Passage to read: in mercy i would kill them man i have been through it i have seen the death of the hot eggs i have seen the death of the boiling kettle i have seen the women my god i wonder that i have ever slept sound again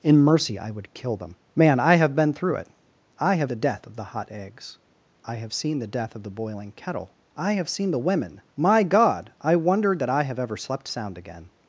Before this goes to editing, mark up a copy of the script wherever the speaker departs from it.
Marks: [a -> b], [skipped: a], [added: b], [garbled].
in mercy i would kill them man i have been through it i have [skipped: seen] the death of the hot eggs i have seen the death of the boiling kettle i have seen the women my god i wonder that i have ever slept sound again